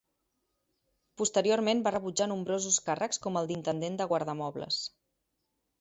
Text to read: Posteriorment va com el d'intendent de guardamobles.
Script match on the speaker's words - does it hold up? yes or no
no